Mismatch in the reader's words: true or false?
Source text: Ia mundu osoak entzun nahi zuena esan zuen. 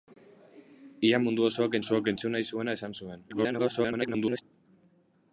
true